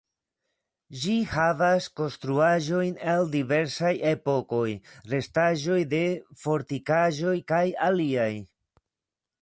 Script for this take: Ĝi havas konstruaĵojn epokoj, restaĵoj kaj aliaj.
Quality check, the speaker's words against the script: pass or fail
fail